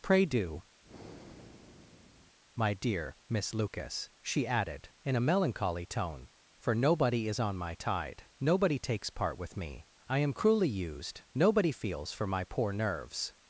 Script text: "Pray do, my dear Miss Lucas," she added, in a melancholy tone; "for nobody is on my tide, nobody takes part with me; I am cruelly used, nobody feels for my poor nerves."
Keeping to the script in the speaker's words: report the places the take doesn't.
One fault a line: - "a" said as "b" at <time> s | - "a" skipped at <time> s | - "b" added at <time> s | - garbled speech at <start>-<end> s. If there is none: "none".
none